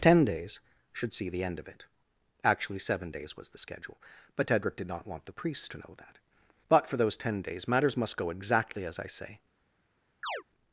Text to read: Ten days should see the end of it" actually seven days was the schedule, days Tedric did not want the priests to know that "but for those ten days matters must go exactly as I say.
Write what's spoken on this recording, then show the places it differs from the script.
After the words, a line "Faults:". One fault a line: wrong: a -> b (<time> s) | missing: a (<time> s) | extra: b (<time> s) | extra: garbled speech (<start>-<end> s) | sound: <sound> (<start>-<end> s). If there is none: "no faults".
Ten days should see the end of it" actually seven days was the schedule, but Tedric did not want the priests to know that "but for those ten days matters must go exactly as I say.
Faults:
wrong: days -> but (4.3 s)
sound: chirp (10.2-10.4 s)